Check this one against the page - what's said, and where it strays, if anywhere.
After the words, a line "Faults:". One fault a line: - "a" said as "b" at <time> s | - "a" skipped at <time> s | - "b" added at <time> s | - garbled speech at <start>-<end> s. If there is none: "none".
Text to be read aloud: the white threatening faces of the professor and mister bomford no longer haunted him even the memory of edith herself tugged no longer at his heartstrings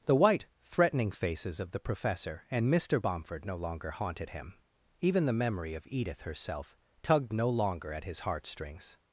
the white threatening faces of the professor and mister bomford no longer haunted him even the memory of edith herself tugged no longer at his heartstrings
Faults:
none